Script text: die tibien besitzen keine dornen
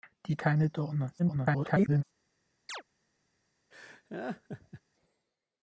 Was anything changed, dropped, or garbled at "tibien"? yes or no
yes